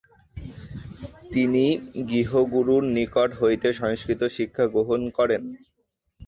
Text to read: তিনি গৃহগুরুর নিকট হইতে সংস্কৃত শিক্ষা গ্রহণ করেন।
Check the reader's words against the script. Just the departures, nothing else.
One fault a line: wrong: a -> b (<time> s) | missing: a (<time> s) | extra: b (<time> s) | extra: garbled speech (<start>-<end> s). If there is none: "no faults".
no faults